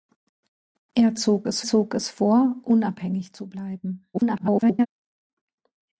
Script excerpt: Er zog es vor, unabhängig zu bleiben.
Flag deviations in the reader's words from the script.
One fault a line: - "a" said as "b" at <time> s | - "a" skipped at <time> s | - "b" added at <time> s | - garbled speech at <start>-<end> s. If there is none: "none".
- "zog es" added at 1.6 s
- garbled speech at 4.1-4.9 s